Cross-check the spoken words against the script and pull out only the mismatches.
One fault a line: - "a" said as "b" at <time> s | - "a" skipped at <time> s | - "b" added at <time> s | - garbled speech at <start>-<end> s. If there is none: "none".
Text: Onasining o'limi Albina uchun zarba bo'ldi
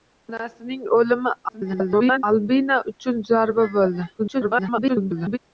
- garbled speech at 1.5-2.2 s
- garbled speech at 4.2-5.4 s